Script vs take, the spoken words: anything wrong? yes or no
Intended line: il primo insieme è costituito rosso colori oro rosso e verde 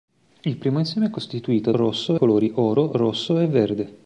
no